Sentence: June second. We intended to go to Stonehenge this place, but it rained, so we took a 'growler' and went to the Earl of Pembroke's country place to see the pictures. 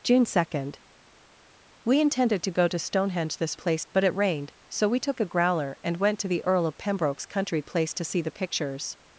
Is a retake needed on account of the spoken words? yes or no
no